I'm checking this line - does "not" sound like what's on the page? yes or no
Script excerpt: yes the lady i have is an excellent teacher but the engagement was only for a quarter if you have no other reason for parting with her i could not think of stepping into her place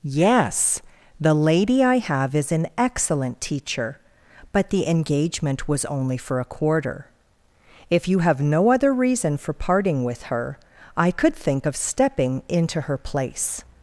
no